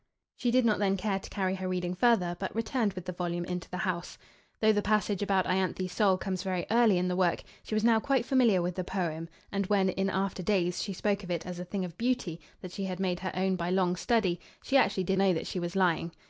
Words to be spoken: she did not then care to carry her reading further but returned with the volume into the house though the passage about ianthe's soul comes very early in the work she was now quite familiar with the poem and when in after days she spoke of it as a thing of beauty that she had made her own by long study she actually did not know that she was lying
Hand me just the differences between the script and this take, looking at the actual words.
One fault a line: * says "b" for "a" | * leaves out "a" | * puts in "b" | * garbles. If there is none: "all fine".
* leaves out "not"